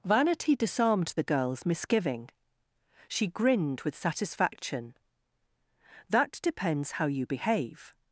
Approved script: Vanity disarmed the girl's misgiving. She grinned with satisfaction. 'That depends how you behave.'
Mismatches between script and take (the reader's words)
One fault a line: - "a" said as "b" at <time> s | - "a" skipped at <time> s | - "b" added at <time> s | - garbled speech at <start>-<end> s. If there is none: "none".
none